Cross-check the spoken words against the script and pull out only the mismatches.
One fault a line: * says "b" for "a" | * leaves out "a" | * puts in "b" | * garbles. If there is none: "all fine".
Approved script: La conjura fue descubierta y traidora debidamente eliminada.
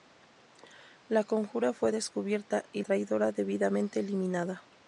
all fine